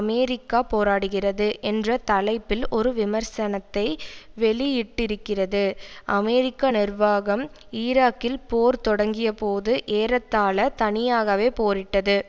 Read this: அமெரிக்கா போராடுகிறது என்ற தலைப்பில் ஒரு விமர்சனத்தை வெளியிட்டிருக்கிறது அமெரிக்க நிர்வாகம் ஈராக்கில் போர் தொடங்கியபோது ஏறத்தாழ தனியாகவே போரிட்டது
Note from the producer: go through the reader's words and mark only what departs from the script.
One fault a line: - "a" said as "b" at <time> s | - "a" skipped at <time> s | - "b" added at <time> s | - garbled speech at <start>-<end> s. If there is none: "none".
none